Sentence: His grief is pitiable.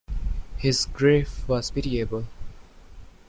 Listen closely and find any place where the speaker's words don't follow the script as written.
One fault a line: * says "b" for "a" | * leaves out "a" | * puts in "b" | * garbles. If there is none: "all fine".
* says "was" for "is"